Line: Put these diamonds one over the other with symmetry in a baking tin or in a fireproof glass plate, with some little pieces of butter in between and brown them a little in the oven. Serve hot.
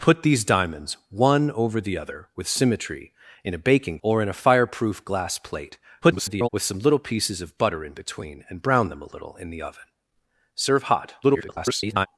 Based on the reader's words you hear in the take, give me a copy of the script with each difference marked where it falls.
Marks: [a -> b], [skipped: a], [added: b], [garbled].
Put these diamonds one over the other with symmetry in a baking [skipped: tin] or in a fireproof glass plate, [garbled] with some little pieces of butter in between and brown them a little in the oven. Serve hot. [garbled]